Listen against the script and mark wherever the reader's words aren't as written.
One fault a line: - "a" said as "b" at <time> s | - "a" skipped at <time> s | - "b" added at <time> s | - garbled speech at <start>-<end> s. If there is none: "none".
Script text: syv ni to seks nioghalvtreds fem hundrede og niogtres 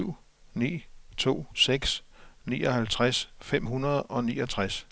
none